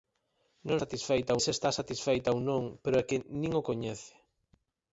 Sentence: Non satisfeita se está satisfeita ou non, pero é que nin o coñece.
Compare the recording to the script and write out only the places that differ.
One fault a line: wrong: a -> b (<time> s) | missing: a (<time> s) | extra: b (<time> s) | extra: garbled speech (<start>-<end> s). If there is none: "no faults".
no faults